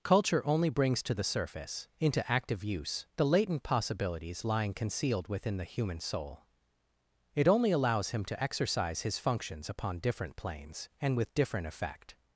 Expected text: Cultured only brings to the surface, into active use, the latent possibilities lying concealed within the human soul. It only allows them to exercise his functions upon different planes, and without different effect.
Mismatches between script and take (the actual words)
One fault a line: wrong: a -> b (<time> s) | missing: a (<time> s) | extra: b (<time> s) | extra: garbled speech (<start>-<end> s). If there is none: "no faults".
wrong: Cultured -> Culture (0.0 s)
wrong: them -> him (8.1 s)
wrong: without -> with (11.2 s)